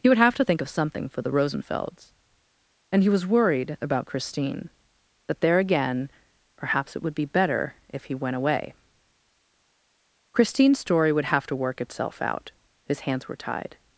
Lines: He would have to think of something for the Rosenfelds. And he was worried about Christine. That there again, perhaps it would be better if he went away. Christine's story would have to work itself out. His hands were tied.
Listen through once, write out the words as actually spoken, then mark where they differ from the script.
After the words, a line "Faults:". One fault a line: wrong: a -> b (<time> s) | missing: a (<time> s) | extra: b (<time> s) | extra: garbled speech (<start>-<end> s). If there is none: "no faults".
He would have to think of something for the Rosenfelds. And he was worried about Christine. That there again, perhaps it would be better if he went away. Christine's story would have to work itself out. His hands were tied.
Faults:
no faults